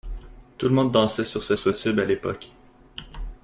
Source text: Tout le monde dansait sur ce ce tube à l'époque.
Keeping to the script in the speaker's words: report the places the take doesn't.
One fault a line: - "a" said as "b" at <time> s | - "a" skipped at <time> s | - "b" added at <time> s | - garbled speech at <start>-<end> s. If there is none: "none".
none